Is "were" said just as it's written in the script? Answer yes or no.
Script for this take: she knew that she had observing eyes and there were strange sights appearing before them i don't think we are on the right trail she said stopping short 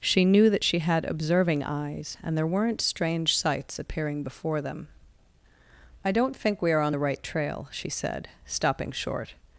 no